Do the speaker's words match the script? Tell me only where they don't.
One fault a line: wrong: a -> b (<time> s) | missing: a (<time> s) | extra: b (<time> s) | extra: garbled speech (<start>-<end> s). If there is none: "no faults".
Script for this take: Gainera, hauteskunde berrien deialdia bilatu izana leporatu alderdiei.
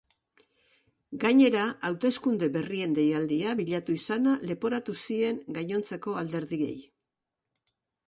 extra: zien gainontzeko (5.1 s)